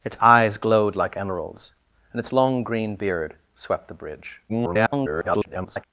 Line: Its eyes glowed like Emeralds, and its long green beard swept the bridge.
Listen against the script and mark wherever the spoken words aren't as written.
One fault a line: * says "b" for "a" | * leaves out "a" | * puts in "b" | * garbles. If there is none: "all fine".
* garbles